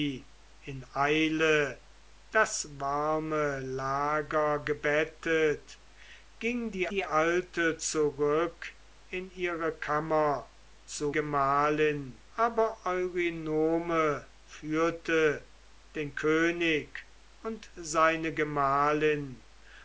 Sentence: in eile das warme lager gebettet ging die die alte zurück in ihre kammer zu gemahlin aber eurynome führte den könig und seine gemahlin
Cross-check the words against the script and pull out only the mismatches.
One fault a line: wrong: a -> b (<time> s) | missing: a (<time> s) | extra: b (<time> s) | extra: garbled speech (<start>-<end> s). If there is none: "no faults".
no faults